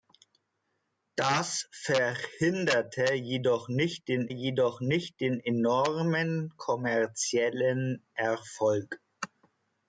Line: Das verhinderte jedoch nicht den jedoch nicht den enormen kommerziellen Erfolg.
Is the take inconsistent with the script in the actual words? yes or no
no